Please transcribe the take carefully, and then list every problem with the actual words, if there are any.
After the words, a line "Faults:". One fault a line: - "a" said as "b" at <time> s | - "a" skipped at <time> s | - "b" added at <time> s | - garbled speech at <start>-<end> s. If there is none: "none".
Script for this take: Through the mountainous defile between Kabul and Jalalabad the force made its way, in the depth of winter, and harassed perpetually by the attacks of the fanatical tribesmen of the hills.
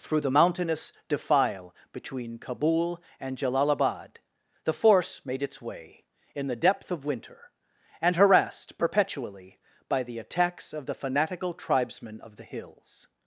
Through the mountainous defile between Kabul and Jalalabad the force made its way, in the depth of winter, and harassed perpetually by the attacks of the fanatical tribesmen of the hills.
Faults:
none